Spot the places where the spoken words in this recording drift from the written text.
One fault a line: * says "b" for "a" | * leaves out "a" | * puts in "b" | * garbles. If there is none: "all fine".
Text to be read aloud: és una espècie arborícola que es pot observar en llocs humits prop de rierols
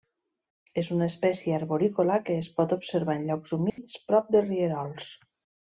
all fine